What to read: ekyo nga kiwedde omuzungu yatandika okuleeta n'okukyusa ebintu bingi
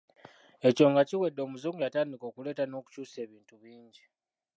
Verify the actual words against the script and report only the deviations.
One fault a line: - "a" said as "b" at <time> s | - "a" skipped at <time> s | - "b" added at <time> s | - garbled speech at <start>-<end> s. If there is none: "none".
none